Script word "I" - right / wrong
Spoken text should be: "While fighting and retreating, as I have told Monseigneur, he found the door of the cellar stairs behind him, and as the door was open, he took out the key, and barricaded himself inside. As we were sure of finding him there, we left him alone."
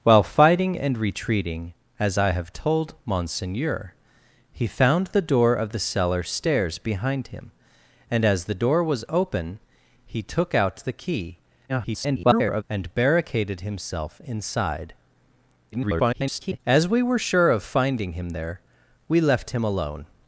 right